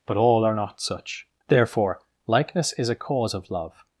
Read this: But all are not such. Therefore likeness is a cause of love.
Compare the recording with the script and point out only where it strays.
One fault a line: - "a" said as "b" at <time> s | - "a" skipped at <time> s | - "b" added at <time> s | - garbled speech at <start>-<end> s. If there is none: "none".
none